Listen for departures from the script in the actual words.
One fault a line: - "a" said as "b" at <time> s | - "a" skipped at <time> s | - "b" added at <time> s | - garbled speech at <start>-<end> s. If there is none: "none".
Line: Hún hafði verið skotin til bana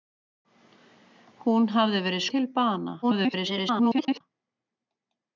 - "skotin" skipped at 2.2 s
- garbled speech at 3.0-4.2 s